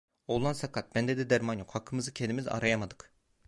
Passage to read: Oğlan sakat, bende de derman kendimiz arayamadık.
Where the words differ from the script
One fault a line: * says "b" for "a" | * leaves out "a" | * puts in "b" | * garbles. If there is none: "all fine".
* puts in "yok hakkımızı"